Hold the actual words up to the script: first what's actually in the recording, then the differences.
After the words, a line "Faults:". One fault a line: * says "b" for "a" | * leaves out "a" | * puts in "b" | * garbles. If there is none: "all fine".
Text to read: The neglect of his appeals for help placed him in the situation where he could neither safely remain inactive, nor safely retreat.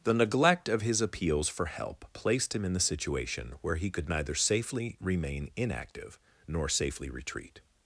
The neglect of his appeals for help placed him in the situation where he could neither safely remain inactive, nor safely retreat.
Faults:
all fine